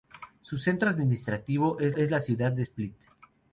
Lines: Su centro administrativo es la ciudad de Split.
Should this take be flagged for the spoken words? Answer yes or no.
yes